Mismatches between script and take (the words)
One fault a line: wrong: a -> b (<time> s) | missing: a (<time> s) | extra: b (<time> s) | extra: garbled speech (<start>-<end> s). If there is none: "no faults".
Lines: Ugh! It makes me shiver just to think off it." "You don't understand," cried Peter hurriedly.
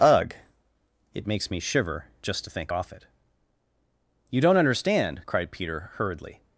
no faults